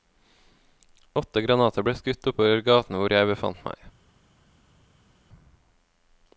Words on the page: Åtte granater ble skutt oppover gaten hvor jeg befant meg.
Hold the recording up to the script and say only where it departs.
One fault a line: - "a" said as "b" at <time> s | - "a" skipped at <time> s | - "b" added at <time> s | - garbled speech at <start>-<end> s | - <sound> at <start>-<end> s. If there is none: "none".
none